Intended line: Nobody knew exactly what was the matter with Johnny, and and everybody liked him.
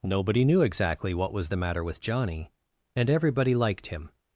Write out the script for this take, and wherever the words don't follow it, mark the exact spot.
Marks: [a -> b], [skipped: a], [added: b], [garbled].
Nobody knew exactly what was the matter with Johnny, and [skipped: and] everybody liked him.